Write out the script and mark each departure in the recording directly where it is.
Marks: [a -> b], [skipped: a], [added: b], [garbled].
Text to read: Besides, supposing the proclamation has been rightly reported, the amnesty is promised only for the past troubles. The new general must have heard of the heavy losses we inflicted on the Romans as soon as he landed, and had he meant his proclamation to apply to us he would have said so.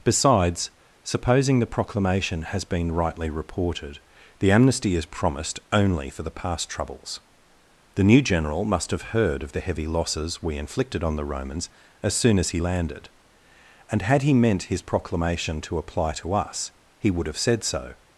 Besides, supposing the proclamation has been rightly reported, the amnesty is promised only for the past troubles. The new general must have heard of the heavy losses we inflicted on the Romans as soon as he landed, and had he meant his proclamation to apply to us he would have said so.